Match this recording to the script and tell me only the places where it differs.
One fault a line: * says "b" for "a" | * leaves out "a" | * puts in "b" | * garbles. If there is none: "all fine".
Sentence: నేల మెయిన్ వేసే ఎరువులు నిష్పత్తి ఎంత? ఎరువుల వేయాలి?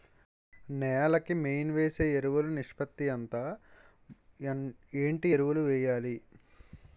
* puts in "కి"
* puts in "ఏంటి"